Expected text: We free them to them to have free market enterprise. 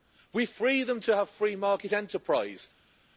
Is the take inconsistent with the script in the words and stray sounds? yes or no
yes